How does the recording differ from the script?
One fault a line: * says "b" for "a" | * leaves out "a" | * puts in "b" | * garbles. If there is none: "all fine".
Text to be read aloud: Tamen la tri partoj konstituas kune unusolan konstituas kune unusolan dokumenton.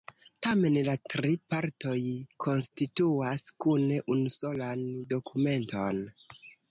* leaves out "konstituas kune unusolan"